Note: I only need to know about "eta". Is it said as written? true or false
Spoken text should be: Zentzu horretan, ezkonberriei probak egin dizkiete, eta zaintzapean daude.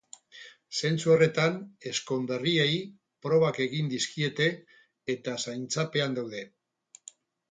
true